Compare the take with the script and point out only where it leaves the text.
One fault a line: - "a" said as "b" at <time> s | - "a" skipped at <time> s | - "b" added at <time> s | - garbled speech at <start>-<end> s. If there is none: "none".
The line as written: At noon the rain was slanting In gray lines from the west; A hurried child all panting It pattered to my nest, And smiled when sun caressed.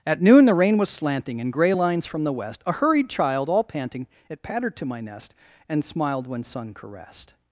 none